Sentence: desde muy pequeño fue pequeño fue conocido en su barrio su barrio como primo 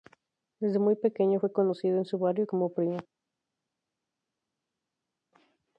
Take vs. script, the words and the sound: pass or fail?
fail